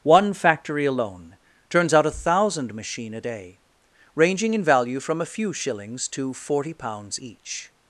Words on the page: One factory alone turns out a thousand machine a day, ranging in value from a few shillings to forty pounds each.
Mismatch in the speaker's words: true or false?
false